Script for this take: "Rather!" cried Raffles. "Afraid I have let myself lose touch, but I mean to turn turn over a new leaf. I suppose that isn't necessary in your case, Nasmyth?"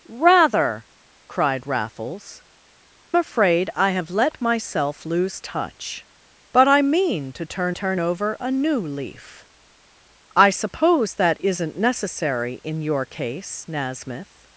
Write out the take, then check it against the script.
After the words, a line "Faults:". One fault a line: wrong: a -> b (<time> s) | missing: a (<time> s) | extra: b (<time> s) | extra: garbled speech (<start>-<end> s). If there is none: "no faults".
"Rather!" cried Raffles. "Afraid I have let myself lose touch, but I mean to turn turn over a new leaf. I suppose that isn't necessary in your case, Nasmyth?"
Faults:
no faults